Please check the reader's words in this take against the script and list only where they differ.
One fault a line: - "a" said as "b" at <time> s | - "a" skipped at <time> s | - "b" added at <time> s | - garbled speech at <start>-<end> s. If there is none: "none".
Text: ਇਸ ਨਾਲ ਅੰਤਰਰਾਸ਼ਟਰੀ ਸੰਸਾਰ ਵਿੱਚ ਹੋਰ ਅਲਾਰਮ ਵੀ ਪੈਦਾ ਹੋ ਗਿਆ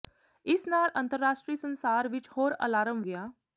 - "ਵੀ ਪੈਦਾ ਹੋ" skipped at 3.0 s